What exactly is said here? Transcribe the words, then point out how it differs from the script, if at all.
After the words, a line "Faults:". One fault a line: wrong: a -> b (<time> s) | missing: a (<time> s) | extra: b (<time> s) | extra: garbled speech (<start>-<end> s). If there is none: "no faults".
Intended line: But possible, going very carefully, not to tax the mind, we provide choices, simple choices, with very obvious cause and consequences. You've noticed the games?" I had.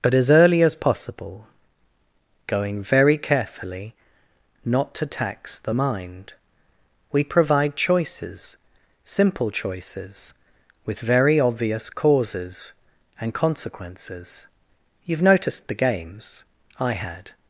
But as early as possible, going very carefully, not to tax the mind, we provide choices, simple choices, with very obvious causes and consequences. You've noticed the games?" I had.
Faults:
extra: as early as (0.1 s)
wrong: cause -> causes (11.9 s)